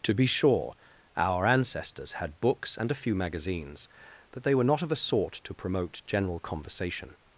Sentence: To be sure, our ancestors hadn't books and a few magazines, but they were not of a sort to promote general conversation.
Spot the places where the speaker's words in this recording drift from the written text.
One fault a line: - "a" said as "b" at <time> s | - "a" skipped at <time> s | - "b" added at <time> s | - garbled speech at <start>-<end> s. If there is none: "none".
- "hadn't" said as "had" at 2.1 s